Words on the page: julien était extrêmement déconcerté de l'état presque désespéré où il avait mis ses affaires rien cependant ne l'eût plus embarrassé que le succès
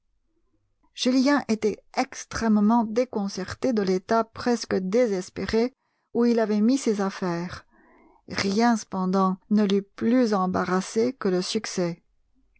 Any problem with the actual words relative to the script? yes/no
no